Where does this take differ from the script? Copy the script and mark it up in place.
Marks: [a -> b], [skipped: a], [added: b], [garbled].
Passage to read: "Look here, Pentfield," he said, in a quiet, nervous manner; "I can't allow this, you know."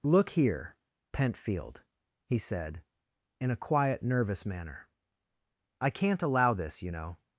"Look here, Pentfield," he said, in a quiet, nervous manner; "I can't allow this, you know."